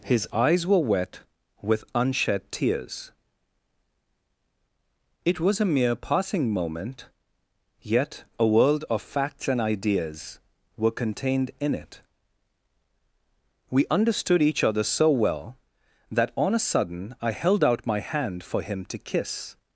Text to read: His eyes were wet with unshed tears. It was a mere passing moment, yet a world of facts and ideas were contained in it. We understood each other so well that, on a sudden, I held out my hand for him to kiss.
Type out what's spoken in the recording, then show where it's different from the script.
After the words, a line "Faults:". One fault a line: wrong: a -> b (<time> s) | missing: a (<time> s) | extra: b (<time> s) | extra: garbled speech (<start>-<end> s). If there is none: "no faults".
His eyes were wet with unshed tears. It was a mere passing moment, yet a world of facts and ideas were contained in it. We understood each other so well that, on a sudden, I held out my hand for him to kiss.
Faults:
no faults